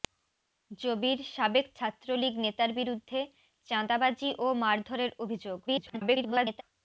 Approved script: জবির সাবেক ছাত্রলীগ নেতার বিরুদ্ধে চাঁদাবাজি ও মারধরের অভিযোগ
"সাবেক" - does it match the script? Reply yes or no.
yes